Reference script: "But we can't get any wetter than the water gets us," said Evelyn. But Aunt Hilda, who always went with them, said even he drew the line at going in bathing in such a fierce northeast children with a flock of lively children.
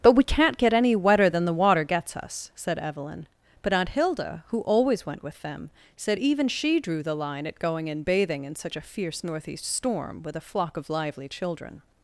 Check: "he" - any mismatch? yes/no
yes